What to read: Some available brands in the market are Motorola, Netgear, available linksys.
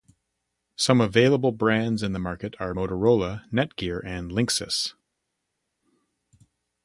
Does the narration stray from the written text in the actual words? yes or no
yes